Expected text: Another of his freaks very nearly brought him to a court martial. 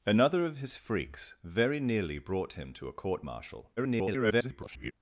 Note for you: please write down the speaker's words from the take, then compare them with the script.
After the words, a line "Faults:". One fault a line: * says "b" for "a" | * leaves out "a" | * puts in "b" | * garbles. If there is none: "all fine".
Another of his freaks very nearly brought him to a court martial. [garbled]
Faults:
* garbles